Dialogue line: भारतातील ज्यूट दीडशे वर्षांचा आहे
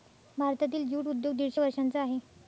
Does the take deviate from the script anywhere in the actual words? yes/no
yes